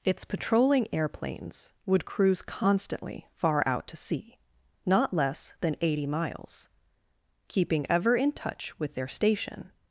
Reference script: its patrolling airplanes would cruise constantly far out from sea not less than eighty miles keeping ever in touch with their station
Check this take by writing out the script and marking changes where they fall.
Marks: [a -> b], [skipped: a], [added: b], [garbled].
its patrolling airplanes would cruise constantly far out [from -> to] sea not less than eighty miles keeping ever in touch with their station